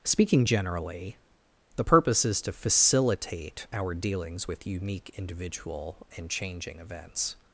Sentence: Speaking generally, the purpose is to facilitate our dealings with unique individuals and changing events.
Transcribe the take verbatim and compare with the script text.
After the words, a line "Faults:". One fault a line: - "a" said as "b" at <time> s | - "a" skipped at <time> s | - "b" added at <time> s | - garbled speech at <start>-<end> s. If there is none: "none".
Speaking generally, the purpose is to facilitate our dealings with unique individual and changing events.
Faults:
- "individuals" said as "individual" at 5.2 s